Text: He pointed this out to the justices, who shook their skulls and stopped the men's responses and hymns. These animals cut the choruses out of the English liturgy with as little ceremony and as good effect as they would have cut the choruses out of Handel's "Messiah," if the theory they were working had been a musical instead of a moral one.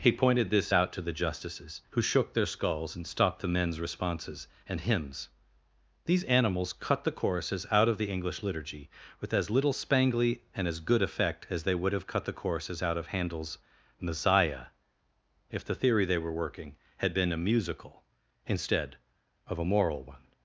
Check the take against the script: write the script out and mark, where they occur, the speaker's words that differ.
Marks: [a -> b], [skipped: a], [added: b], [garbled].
He pointed this out to the justices, who shook their skulls and stopped the men's responses and hymns. These animals cut the choruses out of the English liturgy with as little [ceremony -> spangly] and as good effect as they would have cut the choruses out of Handel's "Messiah," if the theory they were working had been a musical instead of a moral one.